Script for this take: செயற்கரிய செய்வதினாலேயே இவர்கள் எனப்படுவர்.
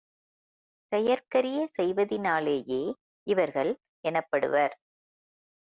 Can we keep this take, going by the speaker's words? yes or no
yes